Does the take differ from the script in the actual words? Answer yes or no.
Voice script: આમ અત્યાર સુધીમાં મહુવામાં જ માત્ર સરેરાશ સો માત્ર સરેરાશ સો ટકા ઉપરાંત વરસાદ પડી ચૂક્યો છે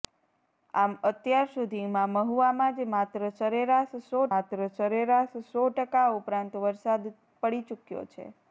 no